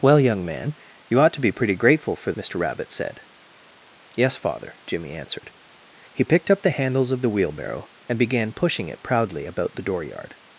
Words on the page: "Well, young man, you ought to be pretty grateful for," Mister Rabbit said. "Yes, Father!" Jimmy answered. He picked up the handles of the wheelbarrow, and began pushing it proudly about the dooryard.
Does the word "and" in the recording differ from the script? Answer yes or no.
no